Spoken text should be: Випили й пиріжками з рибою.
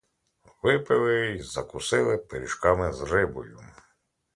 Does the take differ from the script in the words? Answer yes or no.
yes